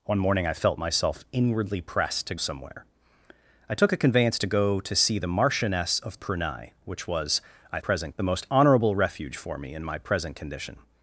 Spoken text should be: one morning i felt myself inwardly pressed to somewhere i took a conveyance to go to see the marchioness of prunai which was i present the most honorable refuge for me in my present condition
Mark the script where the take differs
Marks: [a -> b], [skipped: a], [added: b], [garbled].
one morning i felt myself inwardly pressed to somewhere i took a conveyance to go to see the marchioness of prunai which was i present the most honorable refuge for me in my present condition